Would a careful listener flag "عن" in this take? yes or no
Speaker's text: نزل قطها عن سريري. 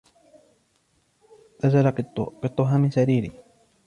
yes